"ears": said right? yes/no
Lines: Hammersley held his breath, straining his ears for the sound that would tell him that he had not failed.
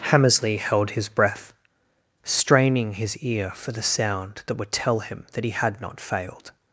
no